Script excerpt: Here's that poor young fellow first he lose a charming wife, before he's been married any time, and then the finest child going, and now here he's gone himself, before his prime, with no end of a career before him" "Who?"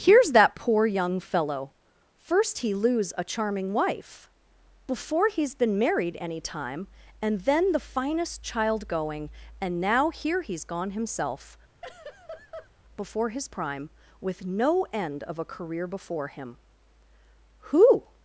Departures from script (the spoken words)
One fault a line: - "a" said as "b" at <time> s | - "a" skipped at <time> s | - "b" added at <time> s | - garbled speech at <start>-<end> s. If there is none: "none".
none